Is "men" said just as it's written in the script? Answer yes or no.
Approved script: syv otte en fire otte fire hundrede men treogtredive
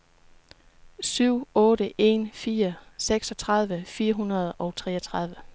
no